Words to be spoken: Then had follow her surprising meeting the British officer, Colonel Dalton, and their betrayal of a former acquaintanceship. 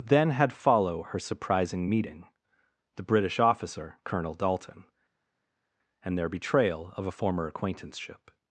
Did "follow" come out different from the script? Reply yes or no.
no